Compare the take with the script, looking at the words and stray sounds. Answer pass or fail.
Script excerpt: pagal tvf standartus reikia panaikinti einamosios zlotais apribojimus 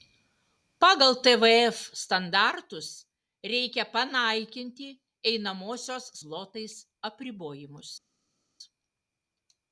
pass